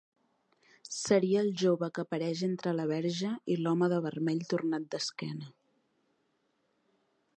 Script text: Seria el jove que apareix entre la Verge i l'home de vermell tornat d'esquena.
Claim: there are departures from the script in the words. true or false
false